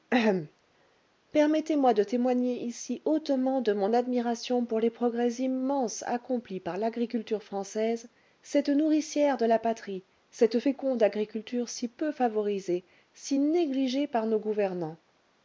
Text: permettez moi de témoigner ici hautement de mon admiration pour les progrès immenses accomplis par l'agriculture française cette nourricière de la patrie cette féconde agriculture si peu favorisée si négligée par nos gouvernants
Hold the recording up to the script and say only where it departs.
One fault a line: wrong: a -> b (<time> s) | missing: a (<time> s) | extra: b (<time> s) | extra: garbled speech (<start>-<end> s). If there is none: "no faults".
no faults